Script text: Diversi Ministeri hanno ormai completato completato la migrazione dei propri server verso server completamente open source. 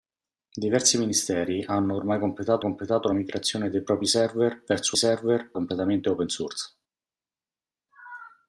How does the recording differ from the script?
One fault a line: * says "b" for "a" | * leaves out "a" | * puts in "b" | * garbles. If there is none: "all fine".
all fine